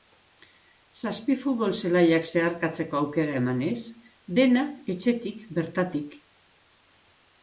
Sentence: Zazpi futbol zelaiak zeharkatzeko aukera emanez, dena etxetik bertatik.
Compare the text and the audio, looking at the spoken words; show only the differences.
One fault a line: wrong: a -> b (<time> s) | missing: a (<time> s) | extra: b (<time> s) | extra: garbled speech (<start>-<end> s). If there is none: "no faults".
no faults